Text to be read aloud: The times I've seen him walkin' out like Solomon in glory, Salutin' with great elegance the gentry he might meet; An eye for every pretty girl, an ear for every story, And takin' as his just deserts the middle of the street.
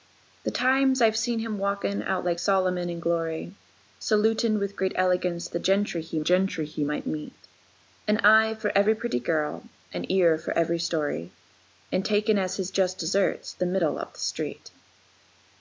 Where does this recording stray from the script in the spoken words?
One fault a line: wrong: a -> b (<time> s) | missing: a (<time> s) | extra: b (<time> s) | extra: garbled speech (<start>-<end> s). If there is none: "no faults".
extra: gentry he (6.2 s)